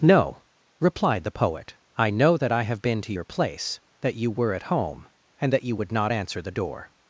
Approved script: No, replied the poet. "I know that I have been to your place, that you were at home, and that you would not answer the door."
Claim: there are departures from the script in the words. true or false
false